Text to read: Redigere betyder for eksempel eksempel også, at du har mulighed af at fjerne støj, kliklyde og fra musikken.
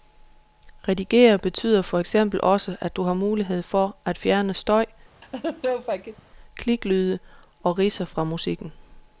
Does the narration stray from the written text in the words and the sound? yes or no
yes